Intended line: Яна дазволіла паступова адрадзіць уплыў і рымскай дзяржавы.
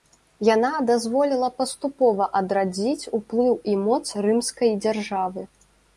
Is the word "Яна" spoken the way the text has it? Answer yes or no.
yes